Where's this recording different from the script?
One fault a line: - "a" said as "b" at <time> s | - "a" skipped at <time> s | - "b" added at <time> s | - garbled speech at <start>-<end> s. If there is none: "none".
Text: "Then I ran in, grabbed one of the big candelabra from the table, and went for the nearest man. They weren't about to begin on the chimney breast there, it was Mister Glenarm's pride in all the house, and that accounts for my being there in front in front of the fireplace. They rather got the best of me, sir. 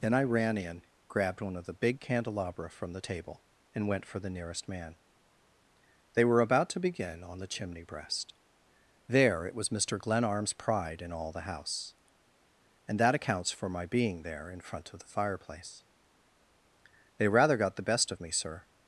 - "weren't" said as "were" at 6.2 s
- "in front" skipped at 14.9 s